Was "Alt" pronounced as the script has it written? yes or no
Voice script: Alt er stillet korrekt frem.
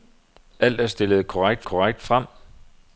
yes